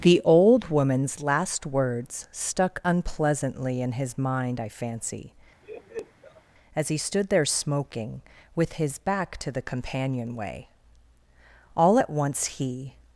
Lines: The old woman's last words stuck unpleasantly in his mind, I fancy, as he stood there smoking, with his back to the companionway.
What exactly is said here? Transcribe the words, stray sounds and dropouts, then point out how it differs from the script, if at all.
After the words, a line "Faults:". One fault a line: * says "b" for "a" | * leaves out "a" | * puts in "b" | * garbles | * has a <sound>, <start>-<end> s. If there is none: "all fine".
The old woman's last words stuck unpleasantly in his mind, I fancy, as he stood there smoking, with his back to the companionway. All at once he
Faults:
* has a laugh, 5.6-6.4 s
* puts in "All at once he"